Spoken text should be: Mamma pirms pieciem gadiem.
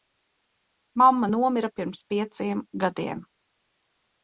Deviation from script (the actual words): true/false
true